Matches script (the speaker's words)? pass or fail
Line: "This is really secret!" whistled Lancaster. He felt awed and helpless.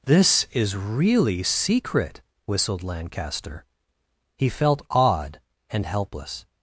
pass